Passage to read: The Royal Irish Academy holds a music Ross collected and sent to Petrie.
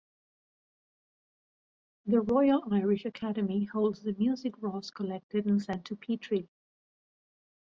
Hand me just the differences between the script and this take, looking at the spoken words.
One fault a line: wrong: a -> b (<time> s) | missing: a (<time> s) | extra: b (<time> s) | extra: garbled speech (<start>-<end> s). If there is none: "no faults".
wrong: a -> the (4.0 s)